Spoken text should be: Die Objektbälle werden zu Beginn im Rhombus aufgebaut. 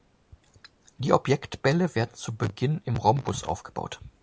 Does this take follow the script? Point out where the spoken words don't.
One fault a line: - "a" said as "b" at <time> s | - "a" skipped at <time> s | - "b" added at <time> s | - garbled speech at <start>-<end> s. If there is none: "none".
none